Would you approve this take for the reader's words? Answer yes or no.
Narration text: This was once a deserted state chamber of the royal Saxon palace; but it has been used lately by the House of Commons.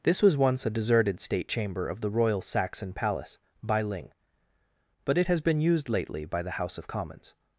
no